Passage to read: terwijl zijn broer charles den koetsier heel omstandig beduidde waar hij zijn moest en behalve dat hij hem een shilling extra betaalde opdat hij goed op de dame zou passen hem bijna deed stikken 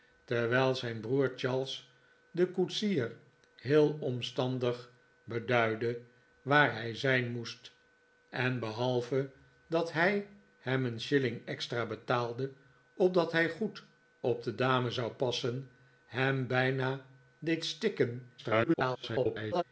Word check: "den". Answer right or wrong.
right